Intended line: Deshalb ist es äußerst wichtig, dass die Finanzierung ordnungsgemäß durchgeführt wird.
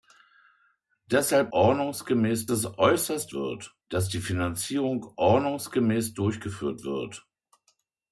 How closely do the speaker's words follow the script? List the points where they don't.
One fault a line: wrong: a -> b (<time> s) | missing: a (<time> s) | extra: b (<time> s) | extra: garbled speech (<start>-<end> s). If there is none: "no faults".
wrong: ist -> ordnungsgemäß (1.5 s)
wrong: wichtig -> wird (3.3 s)